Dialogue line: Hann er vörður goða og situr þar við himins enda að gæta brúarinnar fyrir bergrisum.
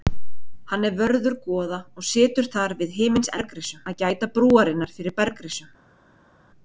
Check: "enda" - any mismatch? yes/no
yes